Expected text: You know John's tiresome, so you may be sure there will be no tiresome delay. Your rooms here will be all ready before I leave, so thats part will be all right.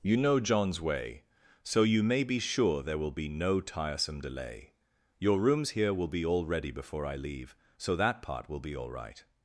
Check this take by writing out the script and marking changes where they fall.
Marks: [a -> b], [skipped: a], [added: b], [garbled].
You know John's [tiresome, -> way] so you may be sure there will be no tiresome delay. Your rooms here will be all ready before I leave, so [thats -> that] part will be all right.